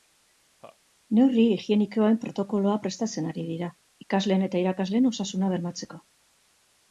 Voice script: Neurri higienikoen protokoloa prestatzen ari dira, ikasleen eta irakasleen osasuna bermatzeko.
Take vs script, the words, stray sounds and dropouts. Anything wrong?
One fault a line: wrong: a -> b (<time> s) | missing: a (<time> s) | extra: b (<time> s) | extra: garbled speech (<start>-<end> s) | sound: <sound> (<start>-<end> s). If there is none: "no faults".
sound: laugh (0.6-0.8 s)